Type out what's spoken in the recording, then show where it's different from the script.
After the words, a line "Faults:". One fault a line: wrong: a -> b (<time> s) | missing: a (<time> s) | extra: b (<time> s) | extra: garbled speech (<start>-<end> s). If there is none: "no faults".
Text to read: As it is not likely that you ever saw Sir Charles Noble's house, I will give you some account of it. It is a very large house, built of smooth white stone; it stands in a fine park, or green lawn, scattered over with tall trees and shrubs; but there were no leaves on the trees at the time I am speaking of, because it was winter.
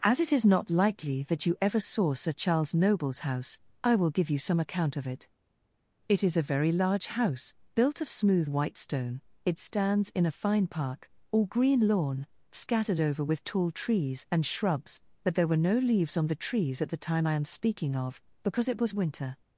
As it is not likely that you ever saw Sir Charles Noble's house, I will give you some account of it. It is a very large house, built of smooth white stone; it stands in a fine park, or green lawn, scattered over with tall trees and shrubs; but there were no leaves on the trees at the time I am speaking of, because it was winter.
Faults:
no faults